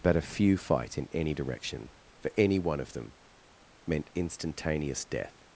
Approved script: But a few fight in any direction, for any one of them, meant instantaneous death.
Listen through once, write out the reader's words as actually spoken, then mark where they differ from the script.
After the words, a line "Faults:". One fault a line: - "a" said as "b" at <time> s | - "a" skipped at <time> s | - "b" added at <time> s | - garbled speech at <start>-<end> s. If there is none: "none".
But a few fight in any direction, for any one of them, meant instantaneous death.
Faults:
none